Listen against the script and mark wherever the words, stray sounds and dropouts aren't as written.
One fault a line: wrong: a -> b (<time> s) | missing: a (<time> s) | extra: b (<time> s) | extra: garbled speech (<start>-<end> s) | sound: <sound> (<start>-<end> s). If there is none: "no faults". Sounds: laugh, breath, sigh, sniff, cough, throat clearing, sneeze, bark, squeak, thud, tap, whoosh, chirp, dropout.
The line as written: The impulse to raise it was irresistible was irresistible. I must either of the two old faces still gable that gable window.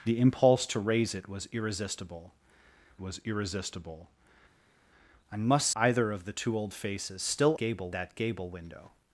no faults